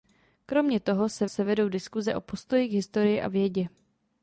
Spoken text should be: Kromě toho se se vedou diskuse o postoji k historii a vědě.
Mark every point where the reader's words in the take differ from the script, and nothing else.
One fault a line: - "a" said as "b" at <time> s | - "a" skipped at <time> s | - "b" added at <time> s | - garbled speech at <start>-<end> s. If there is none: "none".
none